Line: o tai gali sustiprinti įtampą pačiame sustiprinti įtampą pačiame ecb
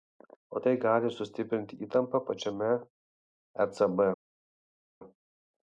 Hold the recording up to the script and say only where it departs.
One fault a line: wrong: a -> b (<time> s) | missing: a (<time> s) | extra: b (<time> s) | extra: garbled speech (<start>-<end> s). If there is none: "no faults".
missing: sustiprinti įtampą pačiame (2.7 s)